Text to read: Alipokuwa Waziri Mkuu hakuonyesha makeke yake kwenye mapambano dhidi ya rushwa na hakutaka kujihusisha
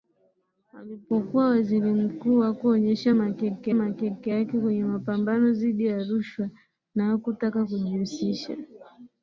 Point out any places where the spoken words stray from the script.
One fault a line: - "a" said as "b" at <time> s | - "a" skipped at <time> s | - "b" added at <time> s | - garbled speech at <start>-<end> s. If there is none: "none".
- "makeke" added at 3.7 s